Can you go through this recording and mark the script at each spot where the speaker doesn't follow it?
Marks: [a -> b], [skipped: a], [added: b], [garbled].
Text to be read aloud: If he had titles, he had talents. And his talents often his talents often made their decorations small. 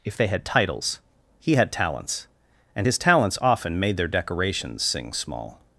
If [he -> they] had titles, he had talents. And his talents often [skipped: his talents often] made their decorations [added: sing] small.